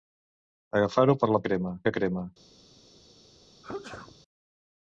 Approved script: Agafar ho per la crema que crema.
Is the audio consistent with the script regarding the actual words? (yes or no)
yes